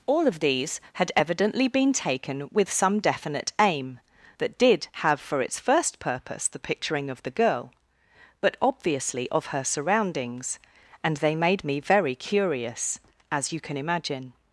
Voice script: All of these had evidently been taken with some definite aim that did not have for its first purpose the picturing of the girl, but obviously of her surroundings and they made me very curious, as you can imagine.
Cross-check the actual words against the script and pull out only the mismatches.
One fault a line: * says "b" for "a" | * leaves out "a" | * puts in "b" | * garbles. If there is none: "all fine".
* leaves out "not"